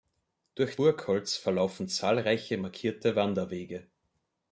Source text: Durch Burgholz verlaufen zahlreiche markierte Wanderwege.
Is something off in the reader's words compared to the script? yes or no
no